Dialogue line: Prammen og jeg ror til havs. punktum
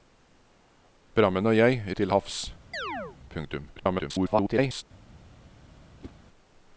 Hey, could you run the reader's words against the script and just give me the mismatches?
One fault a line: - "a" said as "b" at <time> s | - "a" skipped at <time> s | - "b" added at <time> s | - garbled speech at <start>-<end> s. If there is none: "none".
- "ror" skipped at 1.8 s
- garbled speech at 3.8-4.8 s